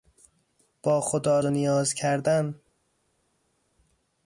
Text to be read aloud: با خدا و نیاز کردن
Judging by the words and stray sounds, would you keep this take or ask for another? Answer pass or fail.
pass